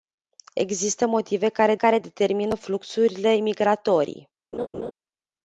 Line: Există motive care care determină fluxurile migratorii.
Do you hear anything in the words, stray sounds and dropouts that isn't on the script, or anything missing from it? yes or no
yes